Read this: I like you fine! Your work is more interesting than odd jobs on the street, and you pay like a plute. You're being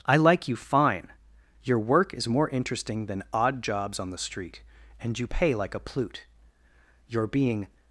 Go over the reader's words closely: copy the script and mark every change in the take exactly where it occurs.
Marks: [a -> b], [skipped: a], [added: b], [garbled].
I like you fine! Your work is more interesting than odd jobs on the street, and you pay like a plute. You're being